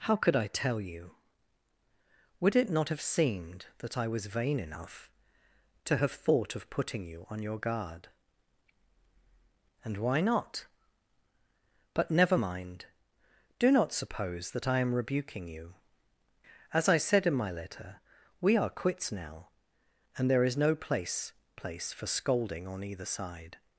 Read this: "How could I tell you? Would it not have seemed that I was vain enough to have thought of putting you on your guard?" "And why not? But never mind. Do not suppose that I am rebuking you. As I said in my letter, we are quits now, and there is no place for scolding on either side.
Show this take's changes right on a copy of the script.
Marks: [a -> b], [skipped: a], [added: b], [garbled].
"How could I tell you? Would it not have seemed that I was vain enough to have thought of putting you on your guard?" "And why not? But never mind. Do not suppose that I am rebuking you. As I said in my letter, we are quits now, and there is no place [added: place] for scolding on either side.